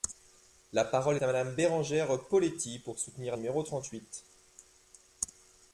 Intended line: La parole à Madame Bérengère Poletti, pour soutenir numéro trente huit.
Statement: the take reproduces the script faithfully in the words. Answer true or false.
true